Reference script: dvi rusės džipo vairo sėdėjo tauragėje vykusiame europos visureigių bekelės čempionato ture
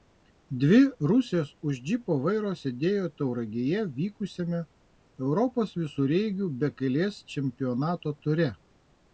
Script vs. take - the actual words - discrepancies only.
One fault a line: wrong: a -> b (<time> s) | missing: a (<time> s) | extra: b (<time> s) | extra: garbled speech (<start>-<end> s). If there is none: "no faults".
extra: už (1.7 s)